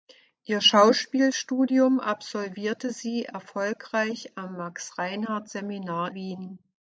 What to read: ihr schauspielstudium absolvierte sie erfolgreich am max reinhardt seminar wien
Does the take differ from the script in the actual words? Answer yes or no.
no